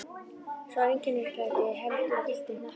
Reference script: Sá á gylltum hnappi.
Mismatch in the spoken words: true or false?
true